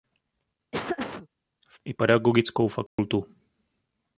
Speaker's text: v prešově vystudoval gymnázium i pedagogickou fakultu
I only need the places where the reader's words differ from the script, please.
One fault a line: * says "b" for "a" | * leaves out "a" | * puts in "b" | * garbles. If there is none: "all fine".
* leaves out "prešově vystudoval gymnázium"